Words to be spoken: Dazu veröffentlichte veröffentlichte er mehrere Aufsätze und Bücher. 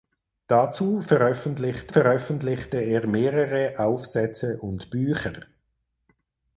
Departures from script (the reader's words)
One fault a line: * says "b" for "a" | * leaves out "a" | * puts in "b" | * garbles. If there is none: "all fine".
all fine